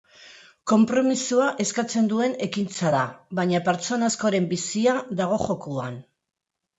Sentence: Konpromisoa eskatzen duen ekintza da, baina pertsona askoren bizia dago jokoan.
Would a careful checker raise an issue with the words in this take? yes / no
no